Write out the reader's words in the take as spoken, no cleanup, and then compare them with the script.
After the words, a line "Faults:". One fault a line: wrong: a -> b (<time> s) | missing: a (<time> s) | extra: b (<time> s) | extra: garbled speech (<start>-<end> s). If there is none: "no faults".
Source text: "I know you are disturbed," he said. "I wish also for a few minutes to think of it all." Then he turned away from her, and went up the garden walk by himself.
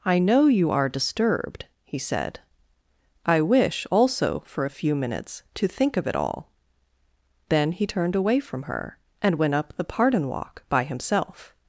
"I know you are disturbed," he said. "I wish also for a few minutes to think of it all." Then he turned away from her, and went up the pardon walk by himself.
Faults:
wrong: garden -> pardon (9.8 s)